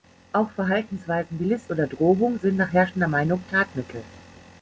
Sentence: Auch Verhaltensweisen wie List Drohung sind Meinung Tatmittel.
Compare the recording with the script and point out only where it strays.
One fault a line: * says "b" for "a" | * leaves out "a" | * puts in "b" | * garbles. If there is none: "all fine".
* puts in "oder"
* puts in "nach herrschender"